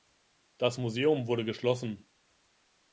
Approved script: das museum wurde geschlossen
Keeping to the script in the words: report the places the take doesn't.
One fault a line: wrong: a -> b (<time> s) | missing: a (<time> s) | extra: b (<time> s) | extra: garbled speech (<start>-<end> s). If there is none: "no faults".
no faults